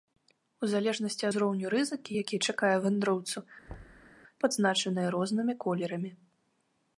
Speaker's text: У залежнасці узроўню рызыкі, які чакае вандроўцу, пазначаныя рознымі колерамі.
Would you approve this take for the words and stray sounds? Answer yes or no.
no